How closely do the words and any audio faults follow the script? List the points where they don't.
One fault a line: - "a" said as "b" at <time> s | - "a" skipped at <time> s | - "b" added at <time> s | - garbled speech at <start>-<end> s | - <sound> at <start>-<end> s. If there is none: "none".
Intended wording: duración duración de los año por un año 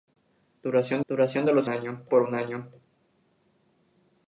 none